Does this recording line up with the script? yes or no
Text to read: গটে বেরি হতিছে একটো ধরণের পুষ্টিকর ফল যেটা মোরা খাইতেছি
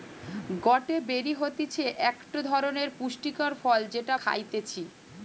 no